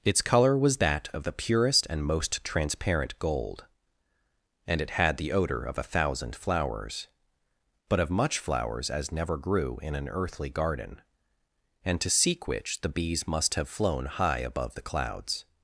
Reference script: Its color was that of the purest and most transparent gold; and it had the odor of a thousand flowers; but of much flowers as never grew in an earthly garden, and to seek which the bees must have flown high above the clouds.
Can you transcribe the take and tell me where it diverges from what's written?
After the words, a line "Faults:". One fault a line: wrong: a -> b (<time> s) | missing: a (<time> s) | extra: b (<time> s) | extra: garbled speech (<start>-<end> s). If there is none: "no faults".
Its color was that of the purest and most transparent gold; and it had the odor of a thousand flowers; but of much flowers as never grew in an earthly garden, and to seek which the bees must have flown high above the clouds.
Faults:
no faults